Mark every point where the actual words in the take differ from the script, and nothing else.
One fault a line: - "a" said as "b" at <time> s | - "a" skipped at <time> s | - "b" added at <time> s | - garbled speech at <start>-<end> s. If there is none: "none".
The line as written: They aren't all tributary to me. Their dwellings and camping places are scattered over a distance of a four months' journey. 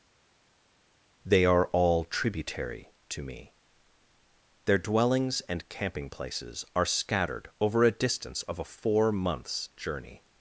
- "aren't" said as "are" at 1.5 s